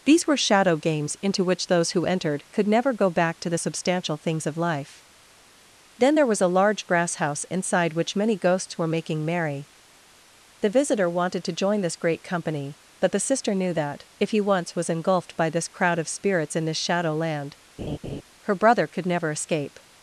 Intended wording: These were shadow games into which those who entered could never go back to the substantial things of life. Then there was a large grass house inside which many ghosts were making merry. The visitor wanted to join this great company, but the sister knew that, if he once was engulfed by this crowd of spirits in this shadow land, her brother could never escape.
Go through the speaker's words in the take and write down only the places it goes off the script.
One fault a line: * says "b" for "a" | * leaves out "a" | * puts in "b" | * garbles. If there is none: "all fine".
all fine